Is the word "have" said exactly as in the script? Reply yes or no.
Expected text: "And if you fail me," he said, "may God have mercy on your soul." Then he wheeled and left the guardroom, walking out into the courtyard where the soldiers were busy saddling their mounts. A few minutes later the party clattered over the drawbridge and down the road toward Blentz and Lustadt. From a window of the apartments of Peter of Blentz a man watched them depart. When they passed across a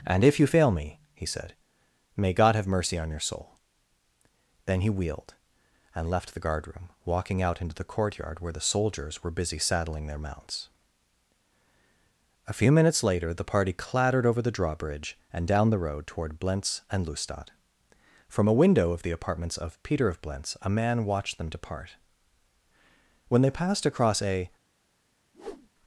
yes